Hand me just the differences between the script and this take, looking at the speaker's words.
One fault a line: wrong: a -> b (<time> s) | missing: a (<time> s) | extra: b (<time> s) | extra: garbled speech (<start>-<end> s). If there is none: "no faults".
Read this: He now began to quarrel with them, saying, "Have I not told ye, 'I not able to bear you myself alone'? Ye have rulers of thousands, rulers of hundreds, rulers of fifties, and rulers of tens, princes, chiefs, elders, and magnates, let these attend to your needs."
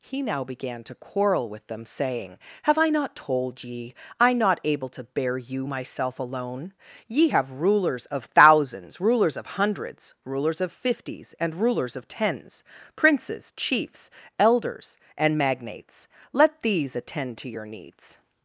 no faults